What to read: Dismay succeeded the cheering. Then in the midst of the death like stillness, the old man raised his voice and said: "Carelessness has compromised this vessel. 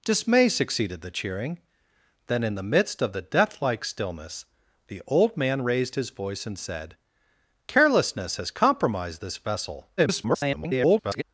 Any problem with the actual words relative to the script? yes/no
yes